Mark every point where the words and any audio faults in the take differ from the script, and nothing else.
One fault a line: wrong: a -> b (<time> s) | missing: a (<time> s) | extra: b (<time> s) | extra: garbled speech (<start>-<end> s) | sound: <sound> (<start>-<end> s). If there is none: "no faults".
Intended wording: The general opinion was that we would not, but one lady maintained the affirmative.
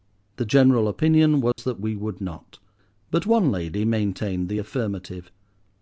sound: dropout (1.5-1.6 s)